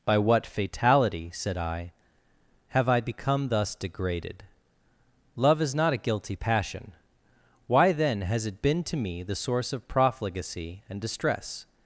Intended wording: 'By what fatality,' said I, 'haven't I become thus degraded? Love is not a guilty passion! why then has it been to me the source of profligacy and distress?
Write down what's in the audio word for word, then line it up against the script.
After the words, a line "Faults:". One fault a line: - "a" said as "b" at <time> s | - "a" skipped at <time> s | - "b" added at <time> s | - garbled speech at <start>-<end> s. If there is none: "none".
'By what fatality,' said I, 'have I become thus degraded? Love is not a guilty passion! why then has it been to me the source of profligacy and distress?
Faults:
- "haven't" said as "have" at 2.7 s